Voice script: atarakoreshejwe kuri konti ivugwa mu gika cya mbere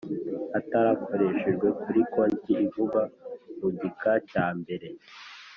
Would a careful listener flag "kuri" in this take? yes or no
no